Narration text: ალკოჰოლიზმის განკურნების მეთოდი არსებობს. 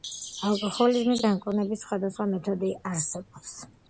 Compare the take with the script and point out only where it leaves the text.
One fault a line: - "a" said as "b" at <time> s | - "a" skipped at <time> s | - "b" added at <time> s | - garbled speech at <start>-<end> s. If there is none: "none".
- "სხვადასხვა" added at 1.9 s